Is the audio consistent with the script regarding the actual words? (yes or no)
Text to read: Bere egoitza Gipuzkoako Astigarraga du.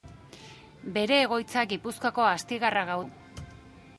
yes